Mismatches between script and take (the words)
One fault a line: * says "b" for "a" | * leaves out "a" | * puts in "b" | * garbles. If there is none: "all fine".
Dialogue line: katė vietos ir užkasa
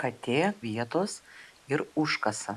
all fine